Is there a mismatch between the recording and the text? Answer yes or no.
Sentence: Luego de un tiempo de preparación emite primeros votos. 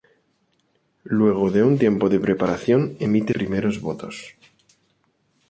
no